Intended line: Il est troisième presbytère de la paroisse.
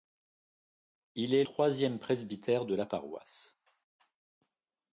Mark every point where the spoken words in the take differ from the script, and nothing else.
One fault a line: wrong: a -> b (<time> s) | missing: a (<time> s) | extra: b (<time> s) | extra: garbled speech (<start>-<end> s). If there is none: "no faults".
no faults